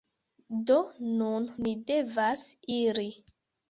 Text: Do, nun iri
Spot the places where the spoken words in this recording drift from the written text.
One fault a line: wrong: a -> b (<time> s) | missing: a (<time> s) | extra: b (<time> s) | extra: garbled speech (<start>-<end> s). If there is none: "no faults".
extra: ni devas (1.6 s)